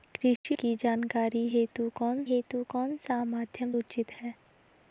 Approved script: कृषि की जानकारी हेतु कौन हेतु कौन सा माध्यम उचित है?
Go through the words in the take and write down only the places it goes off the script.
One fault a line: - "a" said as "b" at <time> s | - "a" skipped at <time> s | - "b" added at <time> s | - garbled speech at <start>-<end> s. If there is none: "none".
none